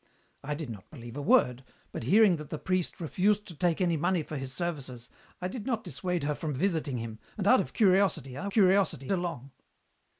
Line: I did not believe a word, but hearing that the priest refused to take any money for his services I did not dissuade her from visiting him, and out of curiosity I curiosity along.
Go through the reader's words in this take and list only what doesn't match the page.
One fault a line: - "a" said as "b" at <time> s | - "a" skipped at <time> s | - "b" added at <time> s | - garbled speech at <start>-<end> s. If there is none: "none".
none